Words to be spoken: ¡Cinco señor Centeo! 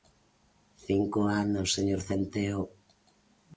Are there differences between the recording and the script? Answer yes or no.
yes